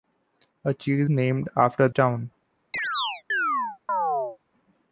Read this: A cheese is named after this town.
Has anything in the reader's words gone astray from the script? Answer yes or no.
yes